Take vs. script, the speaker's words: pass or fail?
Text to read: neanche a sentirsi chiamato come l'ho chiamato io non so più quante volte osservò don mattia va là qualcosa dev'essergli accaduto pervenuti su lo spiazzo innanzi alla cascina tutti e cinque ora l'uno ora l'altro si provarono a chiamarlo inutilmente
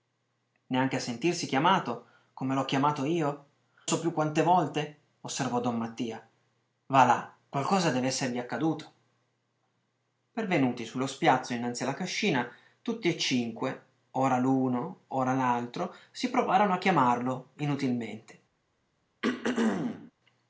fail